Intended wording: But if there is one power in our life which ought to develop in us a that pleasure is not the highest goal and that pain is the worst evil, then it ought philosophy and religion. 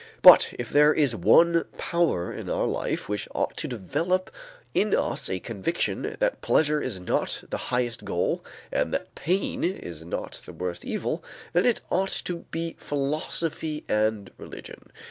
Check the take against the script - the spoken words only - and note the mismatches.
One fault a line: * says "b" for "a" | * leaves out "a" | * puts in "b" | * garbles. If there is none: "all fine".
* puts in "conviction"
* puts in "not"
* puts in "to be"